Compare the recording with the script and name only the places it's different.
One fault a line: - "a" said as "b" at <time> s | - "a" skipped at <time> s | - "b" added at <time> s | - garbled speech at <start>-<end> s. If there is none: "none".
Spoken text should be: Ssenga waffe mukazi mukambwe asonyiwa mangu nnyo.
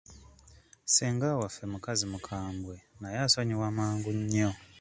- "naye" added at 3.0 s